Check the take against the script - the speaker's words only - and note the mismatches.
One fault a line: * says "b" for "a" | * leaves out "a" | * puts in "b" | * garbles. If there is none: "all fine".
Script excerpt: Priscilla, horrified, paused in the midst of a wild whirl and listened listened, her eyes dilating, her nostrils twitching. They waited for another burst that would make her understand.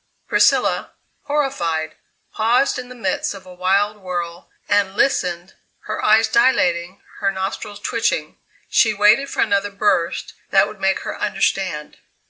* leaves out "listened"
* says "She" for "They"